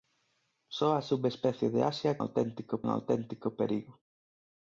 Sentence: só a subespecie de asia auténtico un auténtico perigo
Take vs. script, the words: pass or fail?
pass